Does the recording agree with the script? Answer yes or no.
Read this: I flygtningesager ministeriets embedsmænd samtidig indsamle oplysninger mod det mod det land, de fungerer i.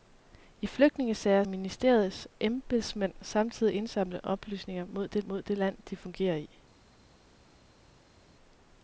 yes